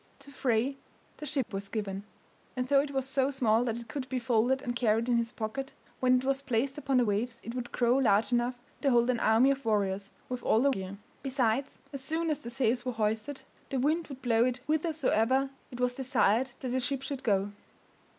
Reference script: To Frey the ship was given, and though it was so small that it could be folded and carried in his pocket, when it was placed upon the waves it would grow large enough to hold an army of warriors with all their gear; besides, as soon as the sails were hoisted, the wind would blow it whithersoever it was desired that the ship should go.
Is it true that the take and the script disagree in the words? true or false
false